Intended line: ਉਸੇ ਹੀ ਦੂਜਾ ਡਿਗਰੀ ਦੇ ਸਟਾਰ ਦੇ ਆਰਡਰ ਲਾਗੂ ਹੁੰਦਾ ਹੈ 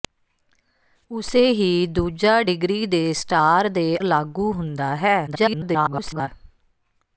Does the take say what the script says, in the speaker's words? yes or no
no